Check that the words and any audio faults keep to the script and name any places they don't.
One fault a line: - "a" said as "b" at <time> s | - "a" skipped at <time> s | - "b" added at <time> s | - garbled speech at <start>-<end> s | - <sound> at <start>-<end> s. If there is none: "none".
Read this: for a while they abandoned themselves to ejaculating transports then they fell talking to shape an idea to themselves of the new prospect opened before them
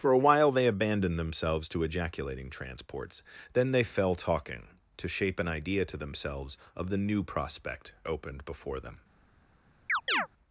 - chirp at 9.9-10.3 s